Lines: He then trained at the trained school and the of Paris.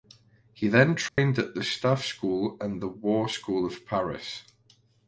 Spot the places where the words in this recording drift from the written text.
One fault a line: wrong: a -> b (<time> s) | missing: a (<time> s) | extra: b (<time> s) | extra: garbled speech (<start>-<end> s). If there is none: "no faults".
wrong: trained -> staff (1.6 s)
extra: war school (2.9 s)